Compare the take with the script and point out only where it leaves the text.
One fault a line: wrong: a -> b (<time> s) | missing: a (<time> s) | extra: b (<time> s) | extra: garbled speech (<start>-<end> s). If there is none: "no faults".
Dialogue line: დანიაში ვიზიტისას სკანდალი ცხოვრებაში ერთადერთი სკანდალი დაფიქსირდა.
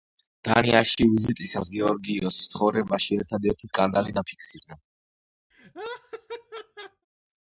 wrong: სკანდალი -> გეორგიოსის (1.8 s)